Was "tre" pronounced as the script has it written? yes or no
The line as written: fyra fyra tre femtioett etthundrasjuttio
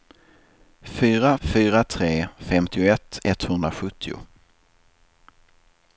yes